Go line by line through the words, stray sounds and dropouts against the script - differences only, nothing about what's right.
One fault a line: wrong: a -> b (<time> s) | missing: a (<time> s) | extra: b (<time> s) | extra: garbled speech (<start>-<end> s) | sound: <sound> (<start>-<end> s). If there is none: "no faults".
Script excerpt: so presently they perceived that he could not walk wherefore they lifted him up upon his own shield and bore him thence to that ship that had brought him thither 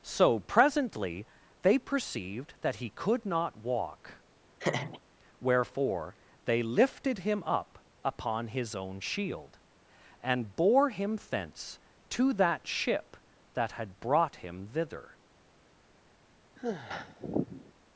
sound: laugh (4.6-5.0 s)
sound: sigh (16.6-17.7 s)